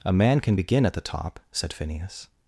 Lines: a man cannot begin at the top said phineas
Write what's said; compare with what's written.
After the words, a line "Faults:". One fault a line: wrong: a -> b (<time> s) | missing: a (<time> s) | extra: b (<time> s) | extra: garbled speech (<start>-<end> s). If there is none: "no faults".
a man can begin at the top said phineas
Faults:
wrong: cannot -> can (0.4 s)